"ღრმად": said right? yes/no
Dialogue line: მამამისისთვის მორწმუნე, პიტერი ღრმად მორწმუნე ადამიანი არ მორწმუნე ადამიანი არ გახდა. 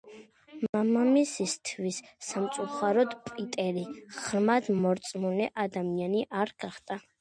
yes